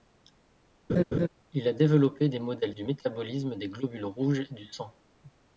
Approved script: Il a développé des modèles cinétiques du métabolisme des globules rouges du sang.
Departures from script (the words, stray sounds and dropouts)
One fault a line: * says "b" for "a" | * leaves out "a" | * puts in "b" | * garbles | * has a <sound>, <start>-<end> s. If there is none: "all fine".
* has a laugh, 0.9-1.3 s
* leaves out "cinétiques"